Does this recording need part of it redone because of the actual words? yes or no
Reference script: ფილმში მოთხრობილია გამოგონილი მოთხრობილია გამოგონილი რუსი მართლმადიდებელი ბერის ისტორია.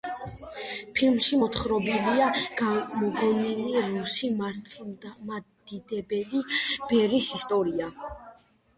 yes